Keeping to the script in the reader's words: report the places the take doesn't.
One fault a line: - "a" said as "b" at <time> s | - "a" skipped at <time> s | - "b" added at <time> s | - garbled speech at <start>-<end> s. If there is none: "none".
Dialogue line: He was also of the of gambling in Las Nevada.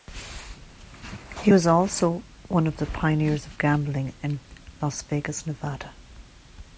- "one" added at 2.5 s
- "pioneers" added at 2.8 s
- "Vegas" added at 5.0 s